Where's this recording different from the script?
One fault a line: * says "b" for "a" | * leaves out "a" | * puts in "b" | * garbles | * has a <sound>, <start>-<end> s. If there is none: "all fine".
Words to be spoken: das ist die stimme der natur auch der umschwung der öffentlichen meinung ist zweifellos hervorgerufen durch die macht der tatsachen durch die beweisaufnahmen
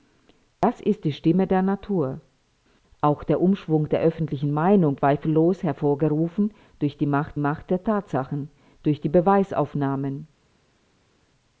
* leaves out "ist"
* puts in "macht"